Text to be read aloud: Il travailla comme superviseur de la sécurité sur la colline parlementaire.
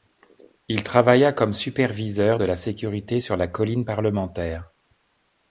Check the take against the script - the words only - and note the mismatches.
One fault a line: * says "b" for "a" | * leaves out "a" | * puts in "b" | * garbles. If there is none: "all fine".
all fine